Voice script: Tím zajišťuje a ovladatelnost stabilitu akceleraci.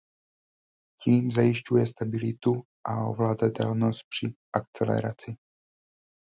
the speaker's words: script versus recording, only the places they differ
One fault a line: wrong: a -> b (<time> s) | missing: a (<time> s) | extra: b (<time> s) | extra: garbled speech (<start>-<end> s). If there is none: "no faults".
extra: stabilitu (1.9 s)
wrong: stabilitu -> při (4.1 s)